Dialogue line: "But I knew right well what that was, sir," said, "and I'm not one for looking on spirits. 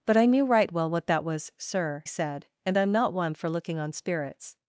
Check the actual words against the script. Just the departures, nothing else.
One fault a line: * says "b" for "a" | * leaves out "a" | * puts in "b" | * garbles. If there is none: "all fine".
all fine